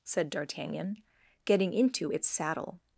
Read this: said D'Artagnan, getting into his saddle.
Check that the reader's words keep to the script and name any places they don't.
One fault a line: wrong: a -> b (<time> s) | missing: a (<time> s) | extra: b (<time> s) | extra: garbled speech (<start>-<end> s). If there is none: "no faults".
wrong: his -> its (2.1 s)